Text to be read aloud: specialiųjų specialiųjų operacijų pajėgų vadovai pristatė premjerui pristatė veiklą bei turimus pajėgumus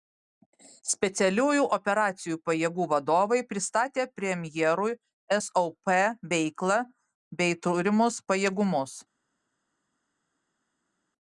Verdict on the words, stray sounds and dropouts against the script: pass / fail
fail